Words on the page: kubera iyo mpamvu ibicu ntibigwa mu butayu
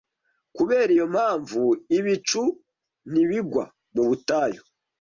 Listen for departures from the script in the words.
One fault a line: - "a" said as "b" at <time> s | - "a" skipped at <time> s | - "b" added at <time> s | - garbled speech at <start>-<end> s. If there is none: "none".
none